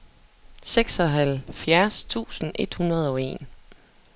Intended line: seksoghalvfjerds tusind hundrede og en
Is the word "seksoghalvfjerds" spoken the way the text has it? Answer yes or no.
yes